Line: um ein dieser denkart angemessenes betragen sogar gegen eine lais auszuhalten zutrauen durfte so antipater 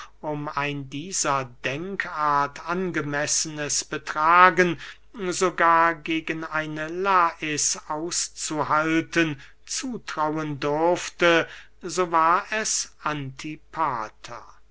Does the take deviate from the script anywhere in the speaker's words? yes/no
yes